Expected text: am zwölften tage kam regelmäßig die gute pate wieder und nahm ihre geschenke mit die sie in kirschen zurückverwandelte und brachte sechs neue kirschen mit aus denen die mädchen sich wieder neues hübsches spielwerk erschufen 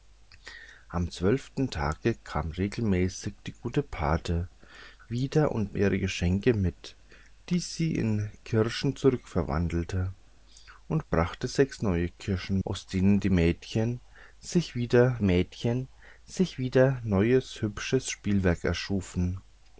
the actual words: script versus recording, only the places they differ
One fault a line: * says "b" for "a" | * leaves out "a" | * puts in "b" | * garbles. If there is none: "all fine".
* leaves out "nahm"
* leaves out "mit"
* puts in "mädchen sich wieder"